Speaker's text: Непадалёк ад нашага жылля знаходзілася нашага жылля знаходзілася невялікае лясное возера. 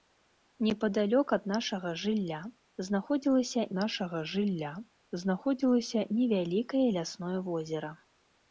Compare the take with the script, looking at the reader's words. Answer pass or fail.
pass